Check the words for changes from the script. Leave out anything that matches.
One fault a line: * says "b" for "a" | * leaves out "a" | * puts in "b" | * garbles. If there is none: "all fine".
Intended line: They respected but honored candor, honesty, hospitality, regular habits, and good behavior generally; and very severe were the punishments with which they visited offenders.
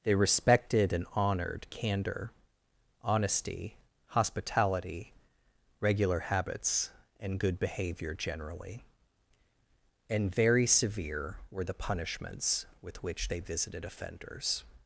* says "and" for "but"